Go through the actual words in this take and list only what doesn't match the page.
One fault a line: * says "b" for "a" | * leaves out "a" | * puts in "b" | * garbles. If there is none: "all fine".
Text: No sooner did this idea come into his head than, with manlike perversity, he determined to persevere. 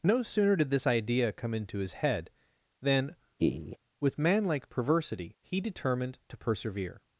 all fine